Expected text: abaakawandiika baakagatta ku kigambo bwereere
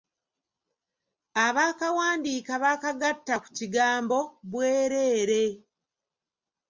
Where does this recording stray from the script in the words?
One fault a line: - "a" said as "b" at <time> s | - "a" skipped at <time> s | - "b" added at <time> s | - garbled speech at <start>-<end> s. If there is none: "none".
none